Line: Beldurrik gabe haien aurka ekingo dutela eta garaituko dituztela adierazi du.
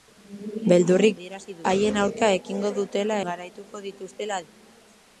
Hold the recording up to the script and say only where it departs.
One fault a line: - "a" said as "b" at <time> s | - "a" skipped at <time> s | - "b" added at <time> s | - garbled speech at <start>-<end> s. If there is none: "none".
- "gabe" said as "adierazi" at 1.2 s
- "eta" skipped at 3.2 s
- "adierazi" skipped at 4.4 s